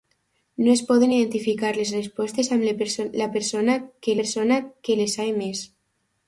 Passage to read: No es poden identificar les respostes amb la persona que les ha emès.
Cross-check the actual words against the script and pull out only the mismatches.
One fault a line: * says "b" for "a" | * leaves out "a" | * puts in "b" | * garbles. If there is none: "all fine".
* puts in "persona que"